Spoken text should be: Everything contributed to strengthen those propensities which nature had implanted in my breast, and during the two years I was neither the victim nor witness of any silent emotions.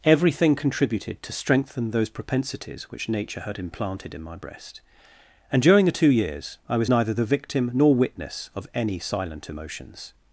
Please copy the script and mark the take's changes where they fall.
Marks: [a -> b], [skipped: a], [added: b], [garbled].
Everything contributed to strengthen those propensities which nature had implanted in my breast, and during the two years I was neither the victim nor witness of any silent emotions.